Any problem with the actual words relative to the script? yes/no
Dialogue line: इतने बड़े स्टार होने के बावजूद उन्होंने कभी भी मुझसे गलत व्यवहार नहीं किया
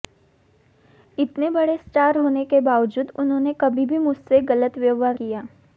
yes